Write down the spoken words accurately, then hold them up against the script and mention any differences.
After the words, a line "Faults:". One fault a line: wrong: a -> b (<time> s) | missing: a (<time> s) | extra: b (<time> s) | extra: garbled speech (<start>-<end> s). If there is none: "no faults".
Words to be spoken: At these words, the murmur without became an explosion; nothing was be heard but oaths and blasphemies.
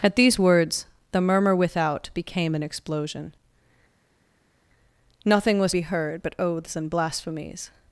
At these words, the murmur without became an explosion; nothing was be heard but oaths and blasphemies.
Faults:
no faults